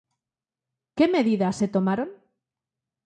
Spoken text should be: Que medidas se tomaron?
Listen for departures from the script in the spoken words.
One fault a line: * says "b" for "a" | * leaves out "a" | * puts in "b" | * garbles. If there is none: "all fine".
all fine